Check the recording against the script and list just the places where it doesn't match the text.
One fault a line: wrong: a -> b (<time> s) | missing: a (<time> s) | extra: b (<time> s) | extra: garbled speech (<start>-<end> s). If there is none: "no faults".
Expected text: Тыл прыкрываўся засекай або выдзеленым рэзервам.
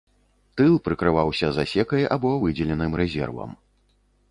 no faults